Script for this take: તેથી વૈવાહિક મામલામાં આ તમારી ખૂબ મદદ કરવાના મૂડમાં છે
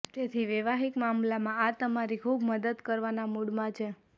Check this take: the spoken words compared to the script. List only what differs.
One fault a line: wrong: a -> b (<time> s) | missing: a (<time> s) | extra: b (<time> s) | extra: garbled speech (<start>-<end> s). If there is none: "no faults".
no faults